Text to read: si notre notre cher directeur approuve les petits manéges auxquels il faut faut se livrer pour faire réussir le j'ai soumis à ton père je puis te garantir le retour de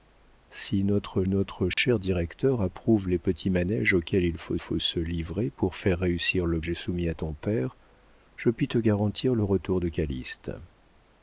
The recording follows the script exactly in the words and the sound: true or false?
false